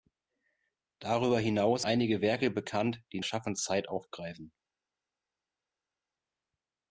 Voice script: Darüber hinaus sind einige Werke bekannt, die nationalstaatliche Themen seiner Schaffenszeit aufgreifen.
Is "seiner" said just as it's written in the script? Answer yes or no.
no